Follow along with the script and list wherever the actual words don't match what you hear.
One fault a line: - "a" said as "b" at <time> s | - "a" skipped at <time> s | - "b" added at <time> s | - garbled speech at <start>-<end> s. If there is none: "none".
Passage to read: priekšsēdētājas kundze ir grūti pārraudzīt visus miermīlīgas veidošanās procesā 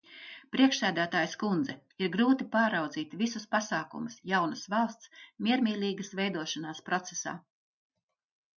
- "pasākumus jaunas valsts" added at 3.5 s